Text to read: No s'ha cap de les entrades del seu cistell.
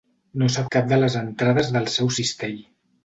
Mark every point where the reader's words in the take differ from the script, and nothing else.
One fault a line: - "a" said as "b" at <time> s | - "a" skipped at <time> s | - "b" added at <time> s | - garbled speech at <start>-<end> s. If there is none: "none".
none